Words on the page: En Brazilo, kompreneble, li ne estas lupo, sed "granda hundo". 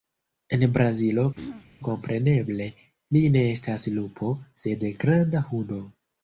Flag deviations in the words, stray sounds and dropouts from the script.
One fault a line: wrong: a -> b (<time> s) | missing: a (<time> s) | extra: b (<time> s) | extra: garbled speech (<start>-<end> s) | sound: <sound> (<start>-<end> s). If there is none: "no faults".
sound: throat clearing (1.4-1.7 s)